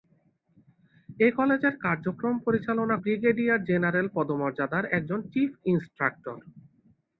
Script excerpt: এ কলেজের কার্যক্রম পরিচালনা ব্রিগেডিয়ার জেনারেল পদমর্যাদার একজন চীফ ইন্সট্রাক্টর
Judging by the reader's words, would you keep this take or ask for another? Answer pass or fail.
pass